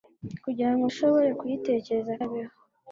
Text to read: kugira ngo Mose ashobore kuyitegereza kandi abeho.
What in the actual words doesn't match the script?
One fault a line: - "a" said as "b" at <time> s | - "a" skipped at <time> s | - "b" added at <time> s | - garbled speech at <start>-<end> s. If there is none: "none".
- "Mose" skipped at 0.8 s
- "kandi" skipped at 2.1 s